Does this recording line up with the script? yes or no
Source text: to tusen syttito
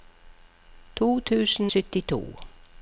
yes